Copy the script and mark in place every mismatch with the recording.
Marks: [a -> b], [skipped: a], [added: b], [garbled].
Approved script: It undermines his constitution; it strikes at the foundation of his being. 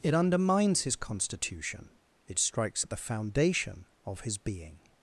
It undermines his constitution; it strikes at the foundation of his being.